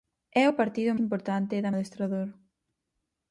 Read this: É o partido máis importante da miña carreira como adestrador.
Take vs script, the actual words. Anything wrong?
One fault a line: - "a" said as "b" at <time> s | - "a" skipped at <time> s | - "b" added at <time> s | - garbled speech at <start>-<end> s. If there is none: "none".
- "máis" skipped at 0.9 s
- "miña carreira como" skipped at 1.7 s